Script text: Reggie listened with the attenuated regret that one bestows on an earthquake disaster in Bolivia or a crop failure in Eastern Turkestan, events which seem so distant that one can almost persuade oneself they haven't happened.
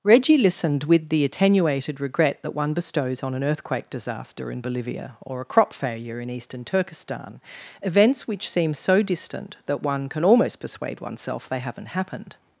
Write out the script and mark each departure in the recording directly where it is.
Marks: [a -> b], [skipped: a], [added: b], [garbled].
Reggie listened with the attenuated regret that one bestows on an earthquake disaster in Bolivia or a crop failure in Eastern Turkestan, events which seem so distant that one can almost persuade oneself they haven't happened.